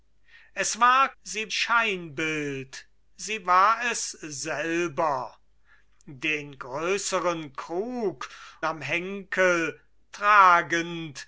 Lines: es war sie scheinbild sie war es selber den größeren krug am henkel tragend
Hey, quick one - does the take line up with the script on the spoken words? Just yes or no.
yes